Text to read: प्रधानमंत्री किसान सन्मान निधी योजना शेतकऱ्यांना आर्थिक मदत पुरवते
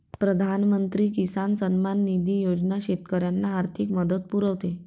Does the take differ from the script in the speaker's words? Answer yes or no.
no